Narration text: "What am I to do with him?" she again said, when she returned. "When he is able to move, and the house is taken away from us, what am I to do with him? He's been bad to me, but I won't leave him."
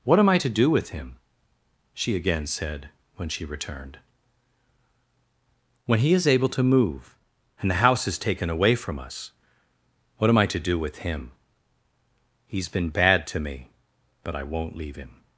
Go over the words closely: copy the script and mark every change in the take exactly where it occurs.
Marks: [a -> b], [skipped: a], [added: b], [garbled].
"What am I to do with him?" she again said, when she returned. "When he is able to move, and the house is taken away from us, what am I to do with him? He's been bad to me, but I won't leave him."